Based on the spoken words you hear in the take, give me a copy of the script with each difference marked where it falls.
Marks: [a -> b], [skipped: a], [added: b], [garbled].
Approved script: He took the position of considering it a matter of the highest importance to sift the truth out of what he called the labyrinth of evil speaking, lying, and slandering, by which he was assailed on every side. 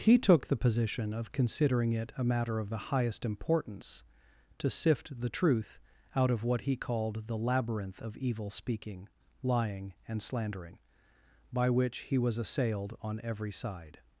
He took the position of considering it a matter of the highest importance to sift the truth out of what he called the labyrinth of evil speaking, lying, and slandering, by which he was assailed on every side.